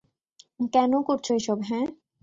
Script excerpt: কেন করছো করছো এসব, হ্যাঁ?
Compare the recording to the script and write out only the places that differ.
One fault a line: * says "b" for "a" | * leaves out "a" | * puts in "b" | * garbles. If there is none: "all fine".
* leaves out "করছো"